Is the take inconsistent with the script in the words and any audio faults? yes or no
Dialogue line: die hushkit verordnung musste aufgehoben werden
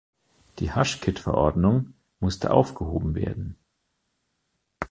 no